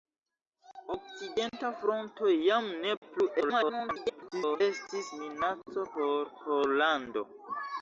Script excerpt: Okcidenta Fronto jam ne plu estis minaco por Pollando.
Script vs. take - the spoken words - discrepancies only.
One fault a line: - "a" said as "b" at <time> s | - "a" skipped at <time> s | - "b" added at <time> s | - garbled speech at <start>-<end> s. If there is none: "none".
- garbled speech at 3.4-4.6 s